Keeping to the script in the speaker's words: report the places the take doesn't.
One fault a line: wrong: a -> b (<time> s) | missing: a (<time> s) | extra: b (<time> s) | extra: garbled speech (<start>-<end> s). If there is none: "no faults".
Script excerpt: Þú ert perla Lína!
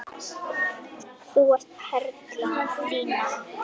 no faults